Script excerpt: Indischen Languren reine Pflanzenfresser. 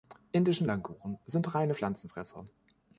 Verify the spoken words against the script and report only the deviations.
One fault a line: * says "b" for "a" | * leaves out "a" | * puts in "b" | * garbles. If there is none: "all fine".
* puts in "sind"